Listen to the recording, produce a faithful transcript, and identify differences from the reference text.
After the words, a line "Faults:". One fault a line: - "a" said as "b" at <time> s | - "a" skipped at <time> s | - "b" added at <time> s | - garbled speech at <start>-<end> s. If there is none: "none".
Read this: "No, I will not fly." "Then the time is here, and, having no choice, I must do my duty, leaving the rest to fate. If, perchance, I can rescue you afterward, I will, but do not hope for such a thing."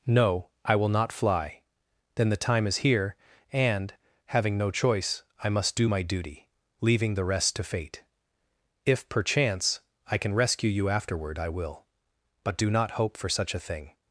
"No, I will not fly." "Then the time is here, and, having no choice, I must do my duty, leaving the rest to fate. If, perchance, I can rescue you afterward, I will, but do not hope for such a thing."
Faults:
none